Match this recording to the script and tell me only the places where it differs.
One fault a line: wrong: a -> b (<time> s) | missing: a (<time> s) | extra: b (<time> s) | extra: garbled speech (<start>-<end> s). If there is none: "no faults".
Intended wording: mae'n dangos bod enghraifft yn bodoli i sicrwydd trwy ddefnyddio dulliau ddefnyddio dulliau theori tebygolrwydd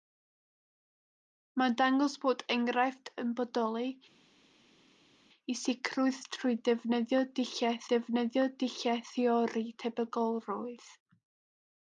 no faults